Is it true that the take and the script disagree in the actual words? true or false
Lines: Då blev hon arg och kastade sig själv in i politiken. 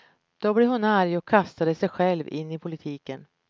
false